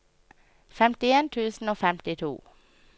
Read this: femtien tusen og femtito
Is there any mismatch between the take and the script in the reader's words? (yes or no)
no